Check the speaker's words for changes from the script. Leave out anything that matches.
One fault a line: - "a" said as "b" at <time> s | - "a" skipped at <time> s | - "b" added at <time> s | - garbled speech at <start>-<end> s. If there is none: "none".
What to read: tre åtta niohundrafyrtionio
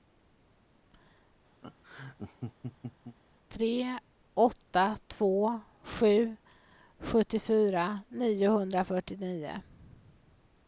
- "två sju sjuttiofyra" added at 5.1 s